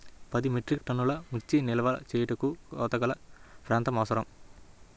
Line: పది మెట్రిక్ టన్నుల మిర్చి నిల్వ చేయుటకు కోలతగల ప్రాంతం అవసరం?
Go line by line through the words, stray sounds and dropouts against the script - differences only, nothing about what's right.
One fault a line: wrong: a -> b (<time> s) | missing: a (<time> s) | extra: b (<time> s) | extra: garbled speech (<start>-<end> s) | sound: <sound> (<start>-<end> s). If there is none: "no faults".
sound: dropout (0.8-0.8 s)